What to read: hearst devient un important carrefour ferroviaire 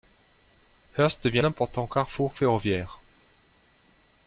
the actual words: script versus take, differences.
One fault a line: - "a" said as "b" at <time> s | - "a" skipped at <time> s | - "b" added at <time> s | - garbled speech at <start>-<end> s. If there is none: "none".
- "un" skipped at 1.4 s